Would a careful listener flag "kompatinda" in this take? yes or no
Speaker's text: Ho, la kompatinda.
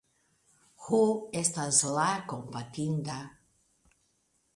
no